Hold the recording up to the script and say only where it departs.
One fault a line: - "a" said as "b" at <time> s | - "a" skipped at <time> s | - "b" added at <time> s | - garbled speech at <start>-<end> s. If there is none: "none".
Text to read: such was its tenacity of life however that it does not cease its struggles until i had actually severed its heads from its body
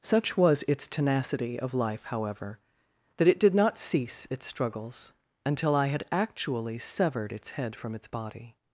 - "does" said as "did" at 3.4 s
- "heads" said as "head" at 7.5 s